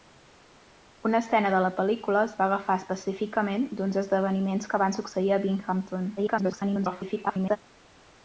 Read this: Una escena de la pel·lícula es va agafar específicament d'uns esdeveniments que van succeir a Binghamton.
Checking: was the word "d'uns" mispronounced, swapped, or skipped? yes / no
no